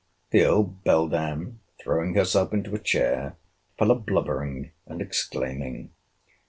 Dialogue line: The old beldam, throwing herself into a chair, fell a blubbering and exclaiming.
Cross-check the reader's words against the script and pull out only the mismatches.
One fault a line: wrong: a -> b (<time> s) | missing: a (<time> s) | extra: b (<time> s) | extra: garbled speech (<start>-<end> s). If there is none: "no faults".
no faults